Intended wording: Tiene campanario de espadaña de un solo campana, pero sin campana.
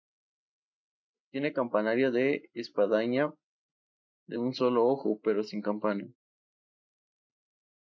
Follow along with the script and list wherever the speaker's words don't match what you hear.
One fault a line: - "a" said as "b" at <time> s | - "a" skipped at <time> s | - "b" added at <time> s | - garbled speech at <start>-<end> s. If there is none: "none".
- "campana" said as "ojo" at 4.9 s